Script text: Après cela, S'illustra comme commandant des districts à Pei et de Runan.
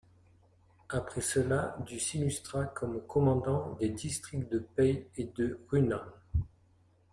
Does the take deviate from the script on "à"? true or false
true